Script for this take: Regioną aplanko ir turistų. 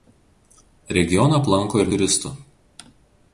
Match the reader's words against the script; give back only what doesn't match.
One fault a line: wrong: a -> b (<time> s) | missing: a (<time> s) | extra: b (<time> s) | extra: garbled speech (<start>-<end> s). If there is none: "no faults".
no faults